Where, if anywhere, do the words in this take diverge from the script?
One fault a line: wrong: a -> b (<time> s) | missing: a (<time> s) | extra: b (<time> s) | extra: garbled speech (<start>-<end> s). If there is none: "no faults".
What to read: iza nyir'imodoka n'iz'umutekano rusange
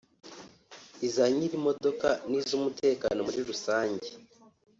extra: muri (3.2 s)